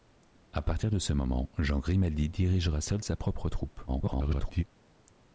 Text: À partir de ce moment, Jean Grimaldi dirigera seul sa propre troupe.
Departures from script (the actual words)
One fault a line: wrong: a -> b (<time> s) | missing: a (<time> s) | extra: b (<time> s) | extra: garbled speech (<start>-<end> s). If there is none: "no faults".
extra: garbled speech (3.9-4.6 s)